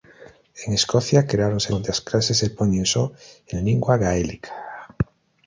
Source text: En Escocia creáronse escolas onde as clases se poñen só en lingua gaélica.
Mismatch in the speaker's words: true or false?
true